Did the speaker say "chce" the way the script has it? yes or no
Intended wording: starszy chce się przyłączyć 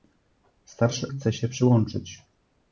yes